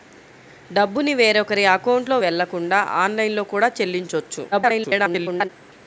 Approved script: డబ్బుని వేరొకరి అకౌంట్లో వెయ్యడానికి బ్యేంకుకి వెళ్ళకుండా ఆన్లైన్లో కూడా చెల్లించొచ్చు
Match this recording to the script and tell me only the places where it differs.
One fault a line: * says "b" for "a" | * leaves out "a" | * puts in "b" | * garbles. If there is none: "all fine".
* leaves out "వెయ్యడానికి బ్యేంకుకి"
* garbles